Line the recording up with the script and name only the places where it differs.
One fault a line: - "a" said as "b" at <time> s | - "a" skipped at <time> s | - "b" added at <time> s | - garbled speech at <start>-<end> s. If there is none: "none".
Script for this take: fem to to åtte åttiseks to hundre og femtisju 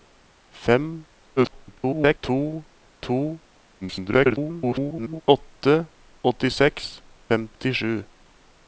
- garbled speech at 1.4-2.2 s
- garbled speech at 3.8-5.2 s
- "to hundre og" skipped at 7.0 s